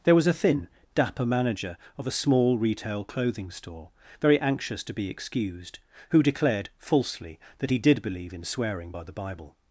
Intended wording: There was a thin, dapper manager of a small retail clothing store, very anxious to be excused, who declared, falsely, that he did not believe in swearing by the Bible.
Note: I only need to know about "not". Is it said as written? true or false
false